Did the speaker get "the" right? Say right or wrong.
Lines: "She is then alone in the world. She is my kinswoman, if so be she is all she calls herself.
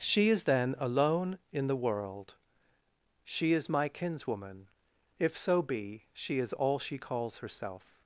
right